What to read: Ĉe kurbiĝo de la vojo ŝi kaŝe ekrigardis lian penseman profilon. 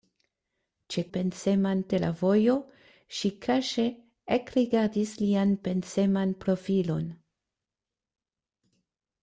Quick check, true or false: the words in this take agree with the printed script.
false